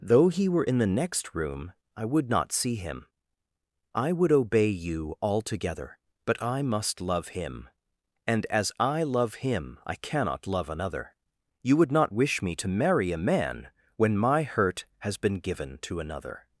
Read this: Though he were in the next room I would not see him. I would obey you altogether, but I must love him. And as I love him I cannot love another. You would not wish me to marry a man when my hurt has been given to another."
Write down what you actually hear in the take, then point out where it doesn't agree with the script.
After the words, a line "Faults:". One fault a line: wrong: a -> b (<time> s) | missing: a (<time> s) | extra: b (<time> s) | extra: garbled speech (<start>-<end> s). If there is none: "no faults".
Though he were in the next room I would not see him. I would obey you altogether, but I must love him. And as I love him I cannot love another. You would not wish me to marry a man when my hurt has been given to another."
Faults:
no faults